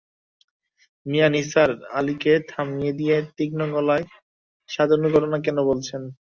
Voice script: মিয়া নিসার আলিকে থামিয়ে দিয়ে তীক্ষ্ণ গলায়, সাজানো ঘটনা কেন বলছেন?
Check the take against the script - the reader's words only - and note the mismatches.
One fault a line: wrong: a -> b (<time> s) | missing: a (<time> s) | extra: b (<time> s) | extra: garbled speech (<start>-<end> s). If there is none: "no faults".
no faults